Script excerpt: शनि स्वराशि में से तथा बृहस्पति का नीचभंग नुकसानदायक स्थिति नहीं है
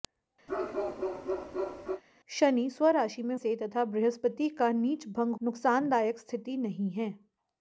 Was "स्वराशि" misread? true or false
false